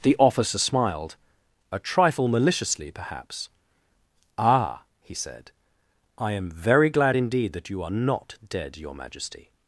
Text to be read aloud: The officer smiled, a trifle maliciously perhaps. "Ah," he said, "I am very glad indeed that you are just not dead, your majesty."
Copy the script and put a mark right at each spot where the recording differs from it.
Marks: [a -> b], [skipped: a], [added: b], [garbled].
The officer smiled, a trifle maliciously perhaps. "Ah," he said, "I am very glad indeed that you are [skipped: just] not dead, your majesty."